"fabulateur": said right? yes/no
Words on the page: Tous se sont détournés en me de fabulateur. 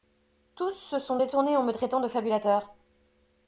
yes